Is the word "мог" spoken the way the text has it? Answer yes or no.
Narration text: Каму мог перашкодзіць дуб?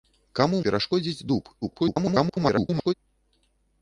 no